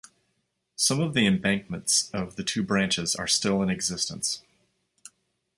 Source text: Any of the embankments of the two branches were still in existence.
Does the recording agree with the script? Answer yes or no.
no